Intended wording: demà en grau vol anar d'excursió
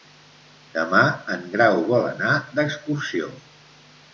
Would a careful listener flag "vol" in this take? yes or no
no